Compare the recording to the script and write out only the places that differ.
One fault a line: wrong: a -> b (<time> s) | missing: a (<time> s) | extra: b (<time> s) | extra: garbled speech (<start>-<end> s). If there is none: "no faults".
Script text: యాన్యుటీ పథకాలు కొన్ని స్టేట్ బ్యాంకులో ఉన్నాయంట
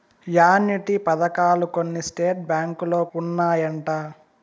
no faults